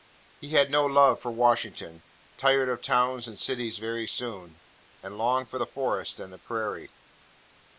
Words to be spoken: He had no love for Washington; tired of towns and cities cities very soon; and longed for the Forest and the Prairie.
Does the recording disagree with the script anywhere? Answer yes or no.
yes